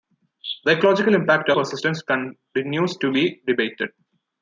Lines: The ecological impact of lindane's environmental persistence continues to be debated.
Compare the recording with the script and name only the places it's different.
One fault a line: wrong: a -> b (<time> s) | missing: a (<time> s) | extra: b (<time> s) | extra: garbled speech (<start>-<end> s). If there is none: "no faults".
missing: of lindane's environmental (1.5 s)